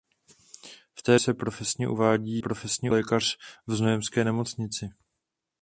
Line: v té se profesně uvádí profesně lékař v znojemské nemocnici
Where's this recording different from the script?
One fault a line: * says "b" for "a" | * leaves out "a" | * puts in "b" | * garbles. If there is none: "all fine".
all fine